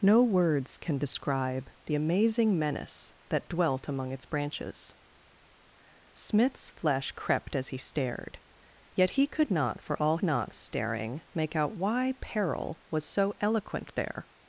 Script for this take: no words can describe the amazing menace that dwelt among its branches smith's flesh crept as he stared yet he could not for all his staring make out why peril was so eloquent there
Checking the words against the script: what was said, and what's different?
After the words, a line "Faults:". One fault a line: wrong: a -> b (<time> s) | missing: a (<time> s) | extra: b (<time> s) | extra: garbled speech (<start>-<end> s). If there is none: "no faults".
no words can describe the amazing menace that dwelt among its branches smith's flesh crept as he stared yet he could not for all not staring make out why peril was so eloquent there
Faults:
wrong: his -> not (10.2 s)